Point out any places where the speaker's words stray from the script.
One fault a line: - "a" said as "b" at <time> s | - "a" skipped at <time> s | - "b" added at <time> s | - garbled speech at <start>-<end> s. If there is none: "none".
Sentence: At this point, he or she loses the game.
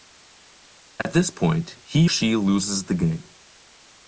- "or" skipped at 2.1 s